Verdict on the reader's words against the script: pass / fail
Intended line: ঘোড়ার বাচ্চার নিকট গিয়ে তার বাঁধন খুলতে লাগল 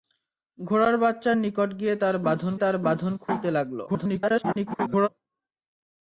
fail